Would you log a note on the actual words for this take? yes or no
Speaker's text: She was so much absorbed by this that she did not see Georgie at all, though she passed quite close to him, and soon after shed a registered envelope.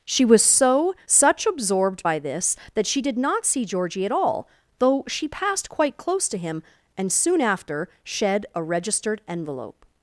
yes